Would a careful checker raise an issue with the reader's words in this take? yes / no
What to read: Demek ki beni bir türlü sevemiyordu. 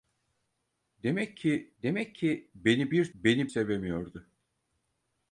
yes